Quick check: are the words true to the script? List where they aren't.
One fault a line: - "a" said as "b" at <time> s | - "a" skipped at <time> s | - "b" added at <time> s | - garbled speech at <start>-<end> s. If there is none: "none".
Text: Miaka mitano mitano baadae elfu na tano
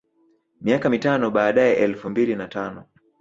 - "mitano" skipped at 1.3 s
- "mbili" added at 2.1 s